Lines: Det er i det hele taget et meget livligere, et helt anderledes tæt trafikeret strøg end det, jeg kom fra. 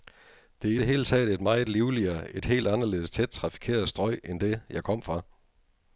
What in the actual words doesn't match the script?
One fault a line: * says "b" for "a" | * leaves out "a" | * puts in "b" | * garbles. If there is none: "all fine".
all fine